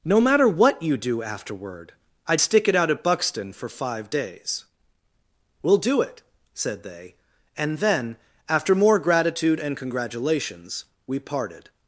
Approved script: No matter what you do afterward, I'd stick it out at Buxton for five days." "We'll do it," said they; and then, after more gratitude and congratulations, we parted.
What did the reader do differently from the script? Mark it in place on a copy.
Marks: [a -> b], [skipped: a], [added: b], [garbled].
No matter what you do afterward, I'd stick it out at Buxton for five days." "We'll do it," said they; and then, after more gratitude and congratulations, we parted.